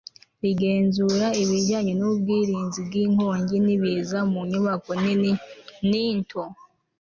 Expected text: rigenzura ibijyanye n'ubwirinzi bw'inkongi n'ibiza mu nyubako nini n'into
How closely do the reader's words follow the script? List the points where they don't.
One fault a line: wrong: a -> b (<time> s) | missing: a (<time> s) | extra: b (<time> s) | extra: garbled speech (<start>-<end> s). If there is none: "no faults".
no faults